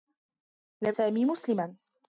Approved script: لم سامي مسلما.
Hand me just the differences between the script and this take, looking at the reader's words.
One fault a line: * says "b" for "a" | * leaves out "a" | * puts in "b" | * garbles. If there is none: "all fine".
all fine